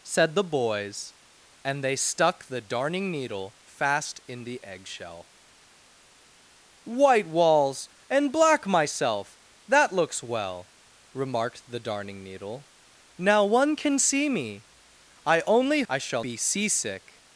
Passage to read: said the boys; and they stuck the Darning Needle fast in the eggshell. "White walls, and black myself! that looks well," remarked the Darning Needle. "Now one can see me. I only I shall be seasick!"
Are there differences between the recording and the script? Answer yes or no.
no